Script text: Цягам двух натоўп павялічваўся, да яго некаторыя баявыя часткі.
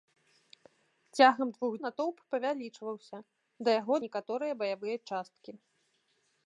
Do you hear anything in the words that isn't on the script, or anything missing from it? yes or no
no